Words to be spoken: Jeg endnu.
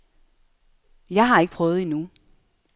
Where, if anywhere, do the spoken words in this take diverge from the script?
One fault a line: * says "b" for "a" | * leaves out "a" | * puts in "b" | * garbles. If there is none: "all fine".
* puts in "har ikke prøvet"